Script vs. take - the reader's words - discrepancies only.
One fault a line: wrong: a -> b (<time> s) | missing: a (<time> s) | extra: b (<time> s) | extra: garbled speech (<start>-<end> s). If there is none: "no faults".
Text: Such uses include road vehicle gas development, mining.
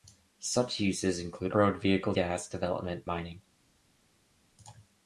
no faults